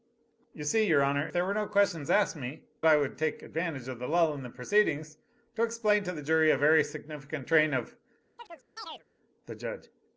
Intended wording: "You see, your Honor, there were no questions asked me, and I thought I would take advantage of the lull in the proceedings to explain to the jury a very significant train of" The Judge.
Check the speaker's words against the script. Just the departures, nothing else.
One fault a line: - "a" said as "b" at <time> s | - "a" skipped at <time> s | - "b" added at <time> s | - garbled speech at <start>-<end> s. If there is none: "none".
- "and I thought" skipped at 2.6 s